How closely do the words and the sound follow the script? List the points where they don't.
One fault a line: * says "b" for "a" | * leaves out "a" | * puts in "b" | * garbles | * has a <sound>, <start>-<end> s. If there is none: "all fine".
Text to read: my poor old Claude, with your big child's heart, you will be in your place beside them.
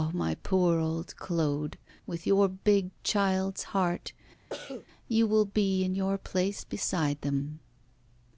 * has a cough, 4.5-4.9 s